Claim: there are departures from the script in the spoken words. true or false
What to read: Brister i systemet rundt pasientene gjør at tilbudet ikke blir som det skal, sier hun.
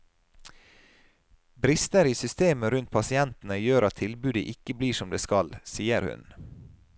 false